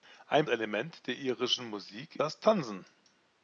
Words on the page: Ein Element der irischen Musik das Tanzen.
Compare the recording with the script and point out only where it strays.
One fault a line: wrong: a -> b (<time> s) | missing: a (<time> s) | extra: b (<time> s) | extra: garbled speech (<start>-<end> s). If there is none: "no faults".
no faults